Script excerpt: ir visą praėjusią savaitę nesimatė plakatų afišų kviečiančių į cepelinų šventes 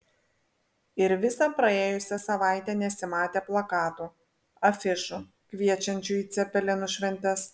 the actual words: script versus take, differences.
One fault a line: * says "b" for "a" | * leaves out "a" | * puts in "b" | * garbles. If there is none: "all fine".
all fine